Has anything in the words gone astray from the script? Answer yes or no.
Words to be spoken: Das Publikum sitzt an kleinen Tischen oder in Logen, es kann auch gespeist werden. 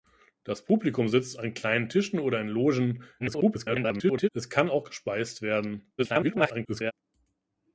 yes